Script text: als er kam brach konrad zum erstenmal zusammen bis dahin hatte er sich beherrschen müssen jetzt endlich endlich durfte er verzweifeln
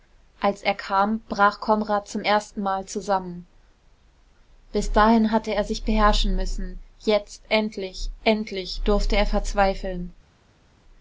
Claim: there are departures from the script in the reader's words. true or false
false